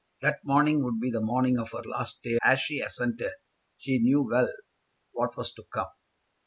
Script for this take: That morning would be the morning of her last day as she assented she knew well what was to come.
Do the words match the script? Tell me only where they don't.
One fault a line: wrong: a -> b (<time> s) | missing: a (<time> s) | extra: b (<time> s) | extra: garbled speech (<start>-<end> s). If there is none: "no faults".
no faults